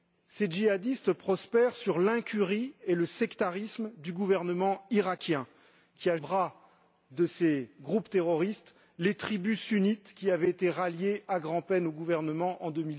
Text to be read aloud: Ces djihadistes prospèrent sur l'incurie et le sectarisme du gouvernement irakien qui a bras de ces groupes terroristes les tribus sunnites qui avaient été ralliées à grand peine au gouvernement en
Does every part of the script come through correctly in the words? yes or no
yes